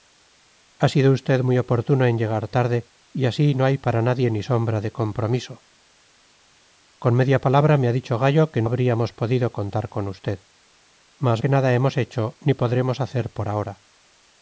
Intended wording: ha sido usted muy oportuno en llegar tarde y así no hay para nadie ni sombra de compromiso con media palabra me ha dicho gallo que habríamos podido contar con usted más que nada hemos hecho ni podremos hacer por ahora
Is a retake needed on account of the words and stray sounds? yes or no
no